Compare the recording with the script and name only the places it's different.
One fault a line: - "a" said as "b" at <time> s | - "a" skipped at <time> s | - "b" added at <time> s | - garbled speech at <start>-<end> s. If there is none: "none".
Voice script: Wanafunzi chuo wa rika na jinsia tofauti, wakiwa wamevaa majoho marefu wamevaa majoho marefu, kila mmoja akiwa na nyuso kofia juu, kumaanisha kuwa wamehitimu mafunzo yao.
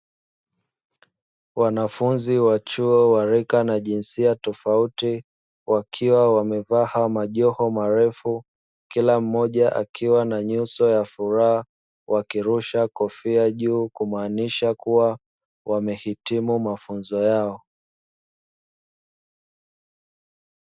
- "wa" added at 2.4 s
- "wamevaa majoho marefu" skipped at 8.4 s
- "ya furaha wakirusha" added at 10.9 s